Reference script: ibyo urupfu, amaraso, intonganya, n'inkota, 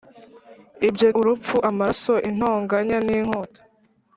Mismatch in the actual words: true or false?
false